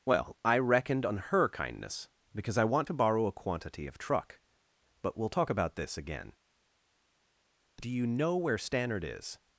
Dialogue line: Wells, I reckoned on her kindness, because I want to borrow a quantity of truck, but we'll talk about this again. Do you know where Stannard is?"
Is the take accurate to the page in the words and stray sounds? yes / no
no